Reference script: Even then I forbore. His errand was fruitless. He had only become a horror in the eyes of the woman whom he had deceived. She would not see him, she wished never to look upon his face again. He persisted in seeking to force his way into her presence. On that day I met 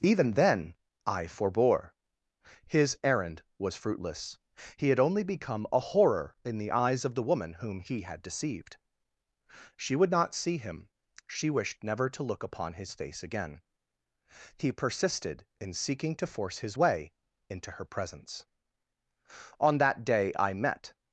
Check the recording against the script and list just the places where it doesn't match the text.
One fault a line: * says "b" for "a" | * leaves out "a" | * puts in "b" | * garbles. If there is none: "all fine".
all fine